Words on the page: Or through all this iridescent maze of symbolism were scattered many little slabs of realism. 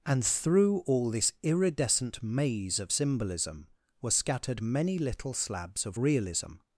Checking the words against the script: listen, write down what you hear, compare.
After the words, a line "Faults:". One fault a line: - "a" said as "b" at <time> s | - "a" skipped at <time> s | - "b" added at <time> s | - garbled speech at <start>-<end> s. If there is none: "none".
And through all this iridescent maze of symbolism were scattered many little slabs of realism.
Faults:
- "Or" said as "And" at 0.1 s